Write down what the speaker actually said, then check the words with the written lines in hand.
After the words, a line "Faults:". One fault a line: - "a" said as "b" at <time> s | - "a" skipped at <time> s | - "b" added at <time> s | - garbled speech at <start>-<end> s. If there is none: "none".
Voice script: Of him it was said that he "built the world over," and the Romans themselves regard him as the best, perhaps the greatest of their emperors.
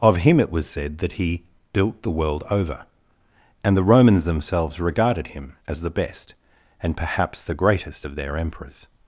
Of him it was said that he "built the world over," and the Romans themselves regarded him as the best, and perhaps the greatest of their emperors.
Faults:
- "regard" said as "regarded" at 4.8 s
- "and" added at 6.8 s